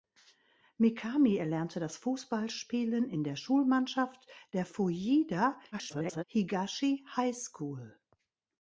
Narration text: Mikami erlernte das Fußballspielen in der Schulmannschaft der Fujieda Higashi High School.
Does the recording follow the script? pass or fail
fail